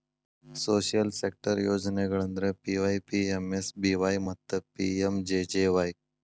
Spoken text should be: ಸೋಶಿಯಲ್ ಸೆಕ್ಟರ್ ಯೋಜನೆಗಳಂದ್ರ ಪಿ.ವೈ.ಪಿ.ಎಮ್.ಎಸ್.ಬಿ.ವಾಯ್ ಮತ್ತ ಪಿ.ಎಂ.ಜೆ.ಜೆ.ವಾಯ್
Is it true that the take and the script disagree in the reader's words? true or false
false